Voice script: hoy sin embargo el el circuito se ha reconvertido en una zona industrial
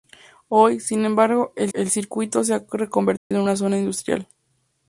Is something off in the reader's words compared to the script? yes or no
no